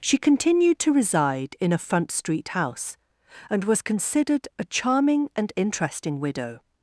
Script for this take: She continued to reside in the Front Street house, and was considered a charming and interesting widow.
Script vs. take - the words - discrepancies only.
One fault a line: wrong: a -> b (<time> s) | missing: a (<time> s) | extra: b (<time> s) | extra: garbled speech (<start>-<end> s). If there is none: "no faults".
wrong: the -> a (1.7 s)